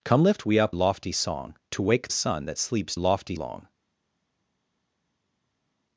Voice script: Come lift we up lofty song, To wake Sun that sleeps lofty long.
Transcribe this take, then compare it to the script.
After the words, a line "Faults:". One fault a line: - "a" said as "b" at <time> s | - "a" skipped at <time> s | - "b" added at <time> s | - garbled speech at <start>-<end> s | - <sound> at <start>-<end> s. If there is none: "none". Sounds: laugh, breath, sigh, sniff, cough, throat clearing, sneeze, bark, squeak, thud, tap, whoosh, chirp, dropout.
Come lift we up lofty song, To wake Sun that sleeps lofty long.
Faults:
none